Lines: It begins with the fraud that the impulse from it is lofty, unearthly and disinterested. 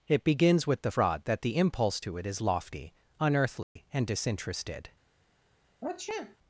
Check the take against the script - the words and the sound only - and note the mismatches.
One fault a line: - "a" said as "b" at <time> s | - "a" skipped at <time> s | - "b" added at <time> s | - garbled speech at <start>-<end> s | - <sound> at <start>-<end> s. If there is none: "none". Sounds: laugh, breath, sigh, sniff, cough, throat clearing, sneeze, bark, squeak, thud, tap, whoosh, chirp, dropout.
- "from" said as "to" at 2.0 s
- dropout at 3.6-3.8 s
- sniff at 5.8-6.4 s